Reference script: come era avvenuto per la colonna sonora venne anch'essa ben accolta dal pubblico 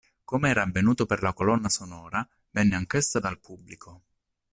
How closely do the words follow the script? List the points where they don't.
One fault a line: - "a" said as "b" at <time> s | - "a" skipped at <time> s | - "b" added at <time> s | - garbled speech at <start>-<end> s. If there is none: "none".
- "ben accolta" skipped at 3.2 s